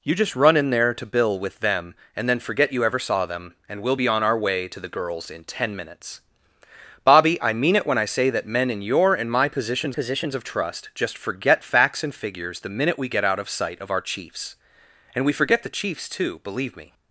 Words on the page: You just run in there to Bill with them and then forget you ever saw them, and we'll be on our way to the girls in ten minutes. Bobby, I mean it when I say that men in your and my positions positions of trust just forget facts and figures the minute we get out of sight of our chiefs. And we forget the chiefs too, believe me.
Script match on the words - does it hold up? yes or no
yes